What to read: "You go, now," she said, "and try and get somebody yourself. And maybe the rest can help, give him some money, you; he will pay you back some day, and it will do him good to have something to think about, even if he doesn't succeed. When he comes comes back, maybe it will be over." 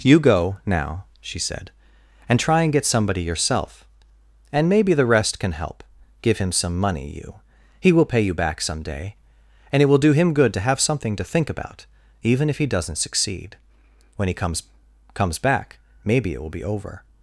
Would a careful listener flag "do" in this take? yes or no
no